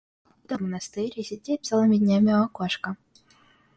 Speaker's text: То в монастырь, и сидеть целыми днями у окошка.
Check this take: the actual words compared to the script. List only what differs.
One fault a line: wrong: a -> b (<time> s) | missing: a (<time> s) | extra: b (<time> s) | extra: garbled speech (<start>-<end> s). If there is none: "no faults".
no faults